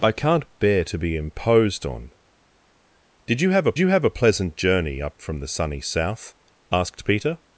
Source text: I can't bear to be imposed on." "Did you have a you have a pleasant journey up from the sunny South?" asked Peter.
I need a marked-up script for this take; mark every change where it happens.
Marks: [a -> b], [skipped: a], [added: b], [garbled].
I can't bear to be imposed on." "Did you have a you have a pleasant journey up from the sunny South?" asked Peter.